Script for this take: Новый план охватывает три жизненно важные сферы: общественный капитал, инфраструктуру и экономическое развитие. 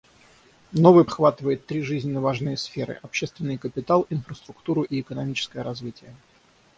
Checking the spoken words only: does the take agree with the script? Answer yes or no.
no